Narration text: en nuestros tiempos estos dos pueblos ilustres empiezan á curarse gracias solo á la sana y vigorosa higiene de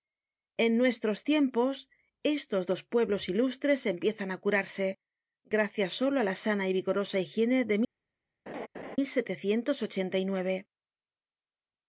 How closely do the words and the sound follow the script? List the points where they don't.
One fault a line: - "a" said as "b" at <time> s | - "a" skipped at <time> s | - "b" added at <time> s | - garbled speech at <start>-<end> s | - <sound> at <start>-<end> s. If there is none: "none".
- laugh at 8.5-9.0 s